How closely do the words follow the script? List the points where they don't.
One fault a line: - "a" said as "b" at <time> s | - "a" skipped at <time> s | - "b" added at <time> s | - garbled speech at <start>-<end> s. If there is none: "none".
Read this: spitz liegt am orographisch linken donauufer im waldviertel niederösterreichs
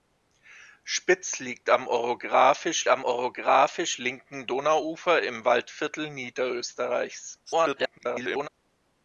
- "am orographisch" added at 2.9 s
- garbled speech at 7.5-8.5 s